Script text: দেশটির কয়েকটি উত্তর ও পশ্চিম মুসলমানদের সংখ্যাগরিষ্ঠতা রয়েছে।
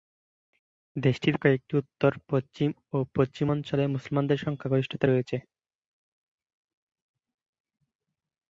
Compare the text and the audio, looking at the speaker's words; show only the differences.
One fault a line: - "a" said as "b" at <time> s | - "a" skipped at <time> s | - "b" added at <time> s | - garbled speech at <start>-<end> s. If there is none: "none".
- "পশ্চিম" added at 2.3 s
- "অঞ্চলে" added at 3.5 s